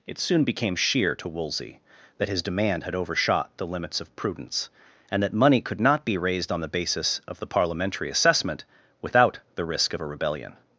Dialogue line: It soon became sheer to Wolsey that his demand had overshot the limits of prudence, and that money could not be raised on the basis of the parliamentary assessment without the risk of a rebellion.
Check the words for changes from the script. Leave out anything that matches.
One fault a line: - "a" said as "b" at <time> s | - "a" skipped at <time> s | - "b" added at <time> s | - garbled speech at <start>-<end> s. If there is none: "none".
none